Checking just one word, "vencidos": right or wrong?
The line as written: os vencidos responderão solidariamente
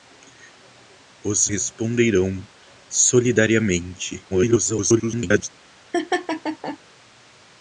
wrong